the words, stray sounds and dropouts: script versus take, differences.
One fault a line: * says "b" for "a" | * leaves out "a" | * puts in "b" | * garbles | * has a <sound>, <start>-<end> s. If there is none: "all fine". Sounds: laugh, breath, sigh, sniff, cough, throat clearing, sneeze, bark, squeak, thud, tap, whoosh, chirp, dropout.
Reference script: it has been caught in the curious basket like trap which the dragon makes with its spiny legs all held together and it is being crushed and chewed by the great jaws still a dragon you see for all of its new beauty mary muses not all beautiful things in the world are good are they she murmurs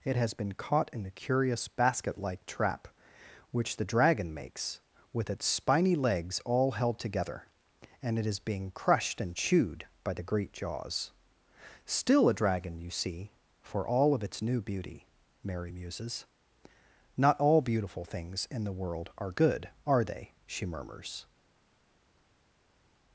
all fine